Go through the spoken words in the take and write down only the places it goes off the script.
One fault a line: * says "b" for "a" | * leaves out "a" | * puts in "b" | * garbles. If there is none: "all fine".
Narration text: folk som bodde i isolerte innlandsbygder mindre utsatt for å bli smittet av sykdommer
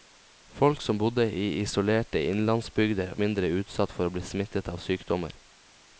all fine